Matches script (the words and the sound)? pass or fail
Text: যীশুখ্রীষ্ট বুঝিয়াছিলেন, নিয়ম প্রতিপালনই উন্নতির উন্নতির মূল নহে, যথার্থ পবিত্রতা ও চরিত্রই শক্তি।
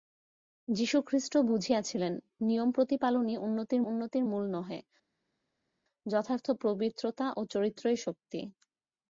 pass